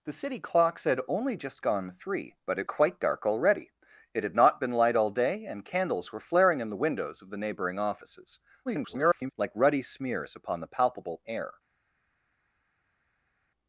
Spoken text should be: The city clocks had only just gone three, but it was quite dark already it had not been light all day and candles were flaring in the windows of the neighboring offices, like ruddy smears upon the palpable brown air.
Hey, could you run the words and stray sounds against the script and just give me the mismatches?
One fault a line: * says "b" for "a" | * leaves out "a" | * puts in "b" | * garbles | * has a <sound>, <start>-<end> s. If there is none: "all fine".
* leaves out "was"
* garbles
* leaves out "brown"